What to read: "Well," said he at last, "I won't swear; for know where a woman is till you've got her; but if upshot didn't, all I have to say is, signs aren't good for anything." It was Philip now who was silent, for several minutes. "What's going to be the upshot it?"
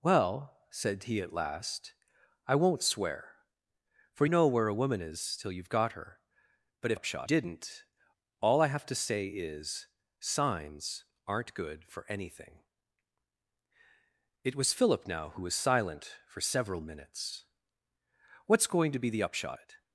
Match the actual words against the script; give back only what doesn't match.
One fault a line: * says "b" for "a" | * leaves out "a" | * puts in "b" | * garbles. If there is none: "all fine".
all fine